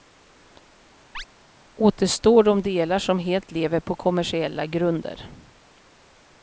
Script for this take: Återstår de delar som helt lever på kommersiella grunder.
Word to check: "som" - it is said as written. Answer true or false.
true